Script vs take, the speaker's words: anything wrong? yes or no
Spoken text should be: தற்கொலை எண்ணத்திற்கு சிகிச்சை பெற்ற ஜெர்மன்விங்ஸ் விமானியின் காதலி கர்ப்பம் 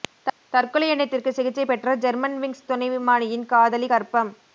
yes